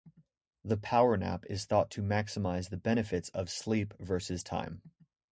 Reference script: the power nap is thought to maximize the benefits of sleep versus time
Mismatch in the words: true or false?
false